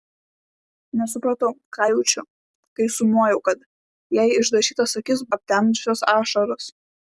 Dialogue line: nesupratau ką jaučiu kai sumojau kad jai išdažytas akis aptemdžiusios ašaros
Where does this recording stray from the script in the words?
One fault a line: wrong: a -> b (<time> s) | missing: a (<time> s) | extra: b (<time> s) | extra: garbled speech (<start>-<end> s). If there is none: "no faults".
no faults